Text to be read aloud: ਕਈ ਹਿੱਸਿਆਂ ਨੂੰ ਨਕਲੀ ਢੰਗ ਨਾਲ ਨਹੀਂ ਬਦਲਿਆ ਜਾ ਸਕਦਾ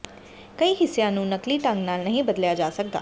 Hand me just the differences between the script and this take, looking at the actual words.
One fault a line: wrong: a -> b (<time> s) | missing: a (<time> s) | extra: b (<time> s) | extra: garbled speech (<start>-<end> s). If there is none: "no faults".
no faults